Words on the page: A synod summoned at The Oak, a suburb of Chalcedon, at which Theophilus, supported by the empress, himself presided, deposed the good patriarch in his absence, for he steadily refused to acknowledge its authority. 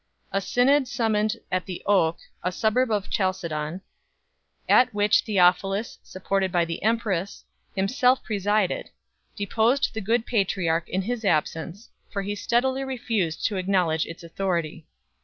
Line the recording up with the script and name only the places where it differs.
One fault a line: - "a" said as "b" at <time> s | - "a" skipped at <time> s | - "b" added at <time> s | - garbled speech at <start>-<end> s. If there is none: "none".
none